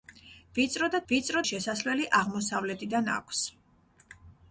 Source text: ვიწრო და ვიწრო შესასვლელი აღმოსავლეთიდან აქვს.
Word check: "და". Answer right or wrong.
right